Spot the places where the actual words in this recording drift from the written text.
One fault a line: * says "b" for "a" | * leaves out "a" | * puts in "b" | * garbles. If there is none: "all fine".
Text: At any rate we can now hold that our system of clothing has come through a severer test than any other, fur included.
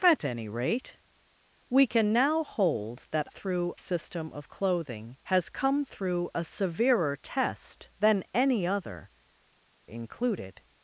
* says "through" for "our"
* leaves out "fur"